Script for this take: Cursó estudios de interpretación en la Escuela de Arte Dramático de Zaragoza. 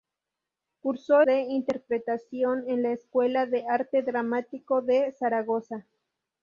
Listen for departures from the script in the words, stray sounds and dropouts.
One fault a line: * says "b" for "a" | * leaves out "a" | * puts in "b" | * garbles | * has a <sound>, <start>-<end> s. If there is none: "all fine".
* leaves out "estudios"